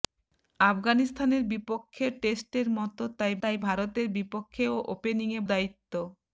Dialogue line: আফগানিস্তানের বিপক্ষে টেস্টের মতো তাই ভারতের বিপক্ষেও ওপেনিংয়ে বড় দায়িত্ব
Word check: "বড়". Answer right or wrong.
wrong